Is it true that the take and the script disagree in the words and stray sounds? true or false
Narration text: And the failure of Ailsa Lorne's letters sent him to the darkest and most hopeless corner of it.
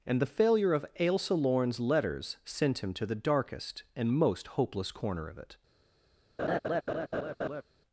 true